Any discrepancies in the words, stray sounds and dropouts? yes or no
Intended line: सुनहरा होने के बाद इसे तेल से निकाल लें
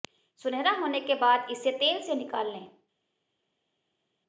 no